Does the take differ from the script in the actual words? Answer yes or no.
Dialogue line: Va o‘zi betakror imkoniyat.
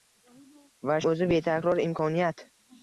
no